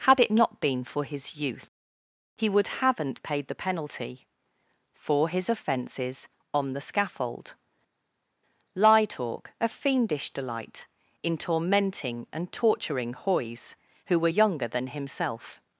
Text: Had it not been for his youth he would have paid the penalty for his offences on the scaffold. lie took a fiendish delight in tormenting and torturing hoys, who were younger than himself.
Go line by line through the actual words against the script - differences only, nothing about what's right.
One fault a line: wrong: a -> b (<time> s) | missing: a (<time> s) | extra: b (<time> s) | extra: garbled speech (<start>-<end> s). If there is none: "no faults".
wrong: have -> haven't (2.7 s)
wrong: took -> talk (9.0 s)